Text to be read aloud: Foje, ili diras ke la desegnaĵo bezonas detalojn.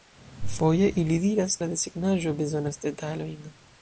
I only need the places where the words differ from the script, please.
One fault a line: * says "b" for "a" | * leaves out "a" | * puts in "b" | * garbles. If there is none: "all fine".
* leaves out "ke"